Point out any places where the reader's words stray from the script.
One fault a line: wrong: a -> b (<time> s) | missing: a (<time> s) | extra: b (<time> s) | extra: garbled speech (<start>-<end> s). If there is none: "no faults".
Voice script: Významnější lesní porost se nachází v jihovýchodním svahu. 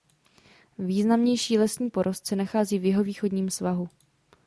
no faults